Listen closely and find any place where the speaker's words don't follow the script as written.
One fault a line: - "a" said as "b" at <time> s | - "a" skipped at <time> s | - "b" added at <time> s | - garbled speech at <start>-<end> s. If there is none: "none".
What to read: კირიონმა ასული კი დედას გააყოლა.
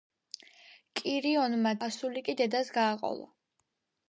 none